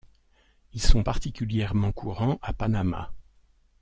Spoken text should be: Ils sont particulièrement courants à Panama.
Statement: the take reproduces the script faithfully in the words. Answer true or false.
true